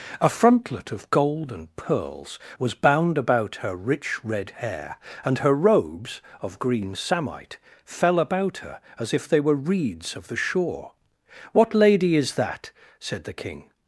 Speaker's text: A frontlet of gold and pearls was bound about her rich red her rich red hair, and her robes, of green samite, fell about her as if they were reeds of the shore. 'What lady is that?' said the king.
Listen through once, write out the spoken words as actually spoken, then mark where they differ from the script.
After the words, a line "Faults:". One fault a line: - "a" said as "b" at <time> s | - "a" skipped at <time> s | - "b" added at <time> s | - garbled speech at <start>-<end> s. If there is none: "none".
A frontlet of gold and pearls was bound about her rich red hair, and her robes, of green samite, fell about her as if they were reeds of the shore. 'What lady is that?' said the king.
Faults:
- "her rich red" skipped at 4.5 s